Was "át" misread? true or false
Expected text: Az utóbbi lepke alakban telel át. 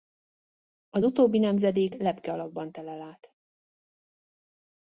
false